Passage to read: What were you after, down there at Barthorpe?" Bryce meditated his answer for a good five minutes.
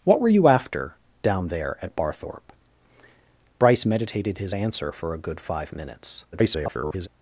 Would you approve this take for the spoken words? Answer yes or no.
no